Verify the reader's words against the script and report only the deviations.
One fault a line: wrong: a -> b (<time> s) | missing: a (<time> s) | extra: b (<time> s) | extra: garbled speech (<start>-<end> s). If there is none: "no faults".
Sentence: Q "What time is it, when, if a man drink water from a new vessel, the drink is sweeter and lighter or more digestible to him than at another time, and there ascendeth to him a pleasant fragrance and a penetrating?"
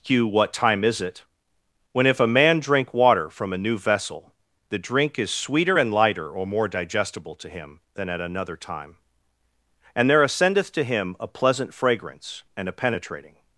no faults